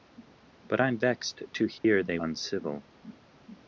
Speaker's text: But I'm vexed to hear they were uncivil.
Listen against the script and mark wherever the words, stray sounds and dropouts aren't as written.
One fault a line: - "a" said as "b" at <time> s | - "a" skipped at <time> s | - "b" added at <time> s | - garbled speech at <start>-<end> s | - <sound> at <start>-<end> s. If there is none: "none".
- dropout at 1.8-1.8 s
- "were" skipped at 2.2 s